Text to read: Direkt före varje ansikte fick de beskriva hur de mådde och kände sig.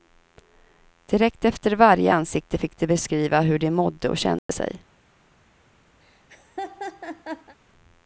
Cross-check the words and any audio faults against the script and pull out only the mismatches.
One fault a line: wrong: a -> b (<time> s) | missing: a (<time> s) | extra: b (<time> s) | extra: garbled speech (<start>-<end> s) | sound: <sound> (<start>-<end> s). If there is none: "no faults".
wrong: före -> efter (1.4 s)
sound: dropout (4.4-4.5 s)
sound: laugh (6.0-7.6 s)